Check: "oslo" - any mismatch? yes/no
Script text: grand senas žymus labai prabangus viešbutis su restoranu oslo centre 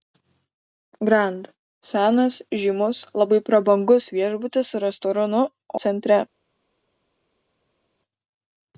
yes